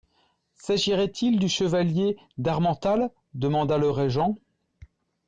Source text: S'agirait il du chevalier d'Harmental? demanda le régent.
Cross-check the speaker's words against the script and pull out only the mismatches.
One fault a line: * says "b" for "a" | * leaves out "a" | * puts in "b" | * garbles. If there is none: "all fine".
all fine